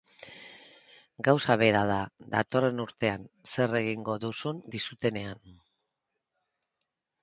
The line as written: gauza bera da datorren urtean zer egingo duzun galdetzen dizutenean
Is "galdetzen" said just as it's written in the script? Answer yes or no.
no